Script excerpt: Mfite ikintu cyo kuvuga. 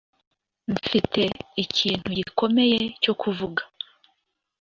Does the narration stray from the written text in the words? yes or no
yes